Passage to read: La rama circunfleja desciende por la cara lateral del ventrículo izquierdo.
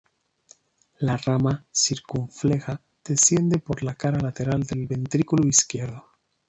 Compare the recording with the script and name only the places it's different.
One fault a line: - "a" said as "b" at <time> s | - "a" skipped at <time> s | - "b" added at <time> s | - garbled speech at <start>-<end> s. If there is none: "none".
none